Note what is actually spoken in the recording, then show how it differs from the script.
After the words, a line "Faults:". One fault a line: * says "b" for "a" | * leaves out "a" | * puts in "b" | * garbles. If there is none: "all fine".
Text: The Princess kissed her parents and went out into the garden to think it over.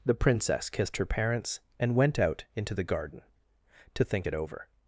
The Princess kissed her parents and went out into the garden to think it over.
Faults:
all fine